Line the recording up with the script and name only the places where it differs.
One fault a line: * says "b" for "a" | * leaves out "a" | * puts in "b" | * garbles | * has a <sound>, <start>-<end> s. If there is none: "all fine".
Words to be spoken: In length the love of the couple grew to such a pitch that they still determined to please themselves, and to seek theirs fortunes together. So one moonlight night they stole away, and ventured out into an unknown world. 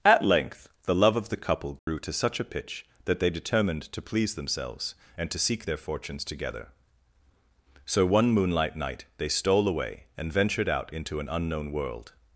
* says "At" for "In"
* has a dropout, 1.8-1.9 s
* leaves out "still"
* says "their" for "theirs"